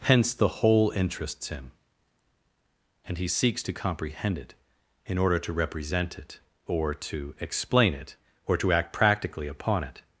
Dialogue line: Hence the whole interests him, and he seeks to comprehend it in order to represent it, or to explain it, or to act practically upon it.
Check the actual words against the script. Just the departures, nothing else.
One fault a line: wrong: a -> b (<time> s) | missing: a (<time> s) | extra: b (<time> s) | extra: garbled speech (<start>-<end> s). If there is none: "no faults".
no faults